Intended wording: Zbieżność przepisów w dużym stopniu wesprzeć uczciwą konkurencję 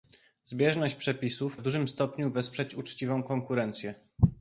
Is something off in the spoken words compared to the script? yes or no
no